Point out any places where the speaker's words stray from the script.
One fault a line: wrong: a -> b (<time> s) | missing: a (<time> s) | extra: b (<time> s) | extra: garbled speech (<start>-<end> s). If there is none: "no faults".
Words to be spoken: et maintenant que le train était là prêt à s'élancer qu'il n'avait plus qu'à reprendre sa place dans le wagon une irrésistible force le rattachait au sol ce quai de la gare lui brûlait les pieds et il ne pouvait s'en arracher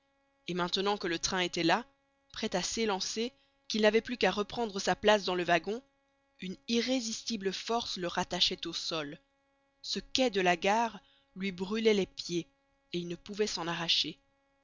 no faults